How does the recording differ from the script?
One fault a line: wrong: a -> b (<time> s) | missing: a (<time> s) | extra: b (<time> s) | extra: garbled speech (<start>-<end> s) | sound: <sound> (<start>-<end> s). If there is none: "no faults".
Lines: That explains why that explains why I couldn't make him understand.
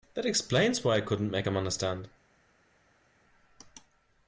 missing: that explains why (0.9 s)